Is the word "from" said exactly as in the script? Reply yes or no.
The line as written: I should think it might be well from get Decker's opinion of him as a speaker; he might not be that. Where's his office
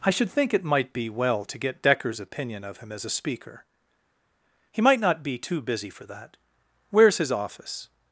no